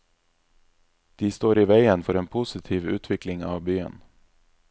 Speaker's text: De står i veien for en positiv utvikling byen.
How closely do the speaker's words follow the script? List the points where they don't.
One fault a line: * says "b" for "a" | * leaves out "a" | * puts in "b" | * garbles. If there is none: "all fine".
* puts in "av"